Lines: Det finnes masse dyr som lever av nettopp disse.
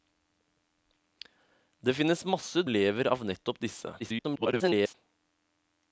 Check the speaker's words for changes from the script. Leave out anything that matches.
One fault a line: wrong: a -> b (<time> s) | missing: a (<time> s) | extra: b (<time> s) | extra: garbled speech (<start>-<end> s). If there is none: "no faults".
missing: dyr som (2.6 s)
extra: garbled speech (4.0-4.9 s)